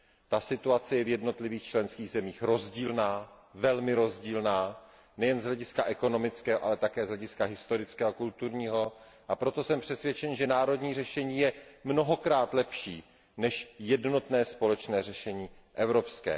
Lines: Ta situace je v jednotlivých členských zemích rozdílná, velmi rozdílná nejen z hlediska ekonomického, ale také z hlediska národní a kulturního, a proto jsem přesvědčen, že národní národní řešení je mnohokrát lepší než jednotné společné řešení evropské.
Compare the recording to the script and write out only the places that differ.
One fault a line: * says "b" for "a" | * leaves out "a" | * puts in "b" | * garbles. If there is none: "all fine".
* says "historického" for "národní"
* leaves out "národní"